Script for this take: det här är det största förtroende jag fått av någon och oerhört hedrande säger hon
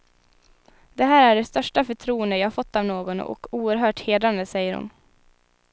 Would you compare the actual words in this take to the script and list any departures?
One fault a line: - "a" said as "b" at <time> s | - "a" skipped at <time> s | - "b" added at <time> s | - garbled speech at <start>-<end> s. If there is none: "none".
none